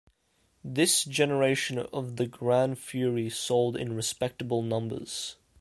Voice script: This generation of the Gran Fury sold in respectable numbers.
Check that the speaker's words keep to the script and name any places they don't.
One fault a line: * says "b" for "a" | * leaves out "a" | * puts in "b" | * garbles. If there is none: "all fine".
all fine